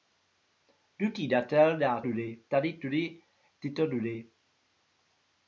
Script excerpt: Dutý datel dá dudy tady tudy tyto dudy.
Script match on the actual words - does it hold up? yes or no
yes